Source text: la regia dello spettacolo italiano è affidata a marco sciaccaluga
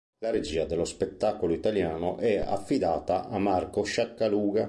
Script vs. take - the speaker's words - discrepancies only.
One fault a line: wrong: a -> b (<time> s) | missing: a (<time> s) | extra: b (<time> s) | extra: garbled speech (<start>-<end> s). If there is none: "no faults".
no faults